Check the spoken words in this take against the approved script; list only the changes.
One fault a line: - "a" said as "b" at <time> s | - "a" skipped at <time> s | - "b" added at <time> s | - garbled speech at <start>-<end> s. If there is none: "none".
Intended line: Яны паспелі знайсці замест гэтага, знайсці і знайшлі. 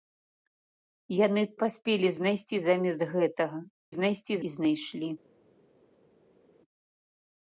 none